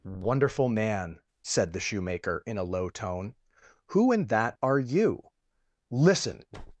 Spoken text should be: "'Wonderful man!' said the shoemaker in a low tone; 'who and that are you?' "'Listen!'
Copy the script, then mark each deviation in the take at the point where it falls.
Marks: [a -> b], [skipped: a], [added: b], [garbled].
"'Wonderful man!' said the shoemaker in a low tone; 'who and that are you?' "'Listen!'